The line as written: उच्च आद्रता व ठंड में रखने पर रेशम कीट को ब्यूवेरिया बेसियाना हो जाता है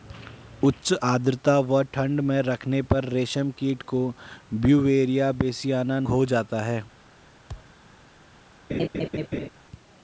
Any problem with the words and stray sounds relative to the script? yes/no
yes